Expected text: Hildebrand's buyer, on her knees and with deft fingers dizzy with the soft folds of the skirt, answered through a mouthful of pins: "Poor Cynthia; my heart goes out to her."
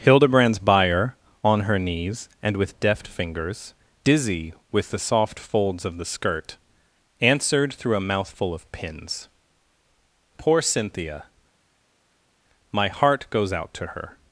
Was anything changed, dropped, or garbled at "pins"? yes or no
no